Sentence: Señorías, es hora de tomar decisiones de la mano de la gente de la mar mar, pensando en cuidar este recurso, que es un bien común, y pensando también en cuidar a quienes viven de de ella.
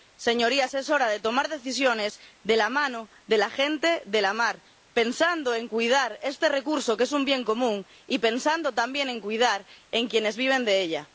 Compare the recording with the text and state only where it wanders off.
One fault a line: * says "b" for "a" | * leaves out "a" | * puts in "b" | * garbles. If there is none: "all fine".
* leaves out "mar"
* leaves out "de"